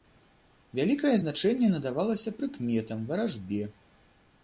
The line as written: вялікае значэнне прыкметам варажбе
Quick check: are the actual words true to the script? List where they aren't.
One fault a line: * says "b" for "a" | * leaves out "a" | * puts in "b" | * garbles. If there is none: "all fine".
* puts in "надавалася"